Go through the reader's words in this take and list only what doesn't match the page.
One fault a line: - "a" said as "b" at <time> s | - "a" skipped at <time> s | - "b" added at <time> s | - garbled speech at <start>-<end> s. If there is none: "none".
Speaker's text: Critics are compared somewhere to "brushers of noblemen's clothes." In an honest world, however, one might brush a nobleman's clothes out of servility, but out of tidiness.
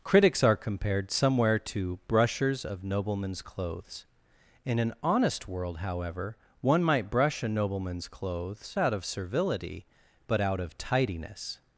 none